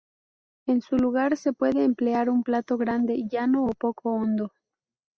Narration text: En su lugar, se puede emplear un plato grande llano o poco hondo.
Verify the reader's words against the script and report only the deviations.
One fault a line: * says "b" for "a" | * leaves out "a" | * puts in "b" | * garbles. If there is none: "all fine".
all fine